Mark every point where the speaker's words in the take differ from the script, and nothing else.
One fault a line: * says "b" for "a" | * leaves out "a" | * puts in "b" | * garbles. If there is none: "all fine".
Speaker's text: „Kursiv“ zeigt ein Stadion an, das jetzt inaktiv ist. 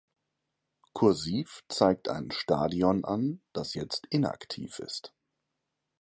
all fine